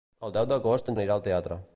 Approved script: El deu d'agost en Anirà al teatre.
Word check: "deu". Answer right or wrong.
right